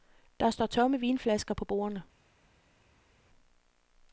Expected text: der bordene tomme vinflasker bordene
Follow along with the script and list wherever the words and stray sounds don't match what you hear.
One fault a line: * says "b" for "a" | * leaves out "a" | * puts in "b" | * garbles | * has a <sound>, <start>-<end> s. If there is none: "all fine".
* says "står" for "bordene"
* puts in "på"